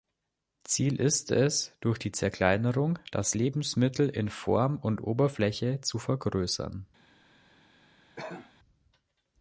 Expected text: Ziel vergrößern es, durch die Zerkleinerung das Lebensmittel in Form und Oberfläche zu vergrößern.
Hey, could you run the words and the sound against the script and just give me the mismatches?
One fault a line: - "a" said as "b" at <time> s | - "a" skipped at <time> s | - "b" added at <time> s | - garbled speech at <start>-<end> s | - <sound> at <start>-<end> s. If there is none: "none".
- "vergrößern" said as "ist" at 1.0 s
- cough at 8.2-8.5 s